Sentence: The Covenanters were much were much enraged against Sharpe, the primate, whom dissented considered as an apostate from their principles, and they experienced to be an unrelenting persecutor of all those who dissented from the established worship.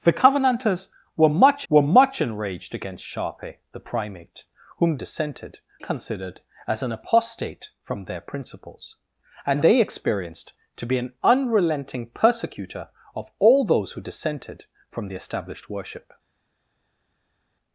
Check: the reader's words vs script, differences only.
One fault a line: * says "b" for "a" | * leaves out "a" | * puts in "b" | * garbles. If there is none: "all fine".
all fine